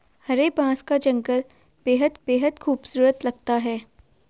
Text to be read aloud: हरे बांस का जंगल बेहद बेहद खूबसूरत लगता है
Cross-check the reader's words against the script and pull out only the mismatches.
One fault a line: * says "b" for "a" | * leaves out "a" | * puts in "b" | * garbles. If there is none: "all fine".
all fine